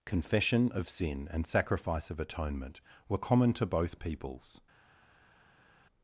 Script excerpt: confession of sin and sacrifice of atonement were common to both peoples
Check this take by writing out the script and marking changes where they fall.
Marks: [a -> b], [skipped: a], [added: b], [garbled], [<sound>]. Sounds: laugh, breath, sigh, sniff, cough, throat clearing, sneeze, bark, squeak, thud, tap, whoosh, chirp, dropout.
confession of sin and sacrifice of atonement were common to both peoples